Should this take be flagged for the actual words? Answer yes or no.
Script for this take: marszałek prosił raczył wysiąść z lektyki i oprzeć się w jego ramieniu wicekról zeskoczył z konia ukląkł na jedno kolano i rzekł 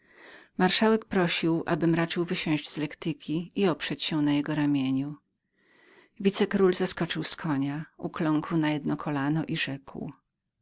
yes